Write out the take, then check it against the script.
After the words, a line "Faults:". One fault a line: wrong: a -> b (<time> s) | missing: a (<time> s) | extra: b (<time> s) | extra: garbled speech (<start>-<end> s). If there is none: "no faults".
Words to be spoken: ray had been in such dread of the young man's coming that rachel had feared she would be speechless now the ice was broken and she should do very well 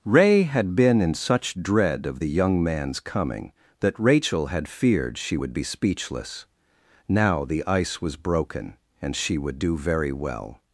ray had been in such dread of the young man's coming that rachel had feared she would be speechless now the ice was broken and she would do very well
Faults:
wrong: should -> would (9.4 s)